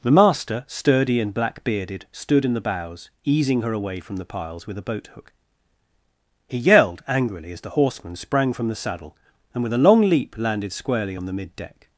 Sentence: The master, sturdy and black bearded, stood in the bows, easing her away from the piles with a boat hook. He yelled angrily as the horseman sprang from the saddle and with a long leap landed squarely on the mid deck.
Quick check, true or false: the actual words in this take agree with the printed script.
true